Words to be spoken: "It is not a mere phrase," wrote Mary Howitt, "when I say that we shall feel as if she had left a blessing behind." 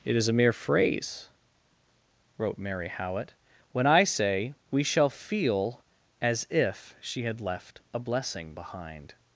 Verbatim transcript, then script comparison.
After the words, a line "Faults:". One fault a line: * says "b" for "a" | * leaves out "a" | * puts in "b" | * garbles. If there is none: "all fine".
"It is a mere phrase," wrote Mary Howitt, "when I say we shall feel as if she had left a blessing behind."
Faults:
* leaves out "not"
* leaves out "that"